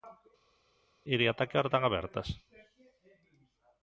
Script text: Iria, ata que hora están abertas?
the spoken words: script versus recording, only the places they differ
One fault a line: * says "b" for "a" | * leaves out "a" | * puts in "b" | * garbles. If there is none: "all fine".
all fine